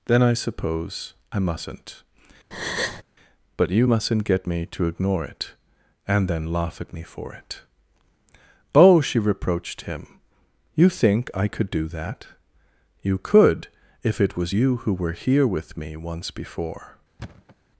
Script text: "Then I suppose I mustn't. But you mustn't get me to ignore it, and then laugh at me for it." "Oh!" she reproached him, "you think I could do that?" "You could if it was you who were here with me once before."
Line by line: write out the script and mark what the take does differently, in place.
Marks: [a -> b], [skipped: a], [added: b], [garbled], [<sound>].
"Then I suppose I mustn't. [breath] But you mustn't get me to ignore it, and then laugh at me for it." "Oh!" she reproached him, "you think I could do that?" "You could if it was you who were here with me once before." [thud]